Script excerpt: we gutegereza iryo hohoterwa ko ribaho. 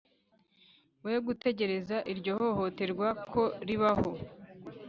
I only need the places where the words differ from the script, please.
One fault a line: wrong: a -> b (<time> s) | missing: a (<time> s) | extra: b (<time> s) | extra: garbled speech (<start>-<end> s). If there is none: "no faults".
no faults